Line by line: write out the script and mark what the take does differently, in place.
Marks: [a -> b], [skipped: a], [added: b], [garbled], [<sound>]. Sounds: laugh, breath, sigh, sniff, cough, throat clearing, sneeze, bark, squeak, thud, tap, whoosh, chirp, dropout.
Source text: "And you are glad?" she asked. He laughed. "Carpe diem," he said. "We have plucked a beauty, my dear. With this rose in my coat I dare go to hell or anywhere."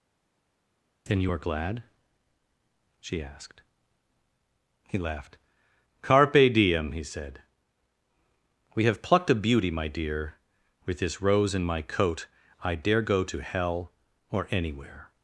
["And -> Then] you are glad?" she asked. He laughed. "Carpe diem," he said. "We have plucked a beauty, my dear. With this rose in my coat I dare go to hell or anywhere."